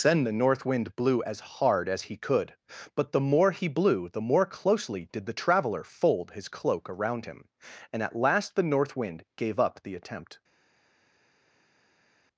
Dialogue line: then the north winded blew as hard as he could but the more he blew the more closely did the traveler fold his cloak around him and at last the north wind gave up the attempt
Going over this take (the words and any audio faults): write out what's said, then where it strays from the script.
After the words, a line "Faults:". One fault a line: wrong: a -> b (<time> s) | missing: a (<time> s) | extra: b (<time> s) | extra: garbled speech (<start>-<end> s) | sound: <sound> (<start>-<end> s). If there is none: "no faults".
then the north wind blew as hard as he could but the more he blew the more closely did the traveler fold his cloak around him and at last the north wind gave up the attempt
Faults:
wrong: winded -> wind (0.7 s)